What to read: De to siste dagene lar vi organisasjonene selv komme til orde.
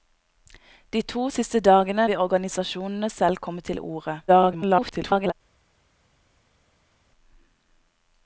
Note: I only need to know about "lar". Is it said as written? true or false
false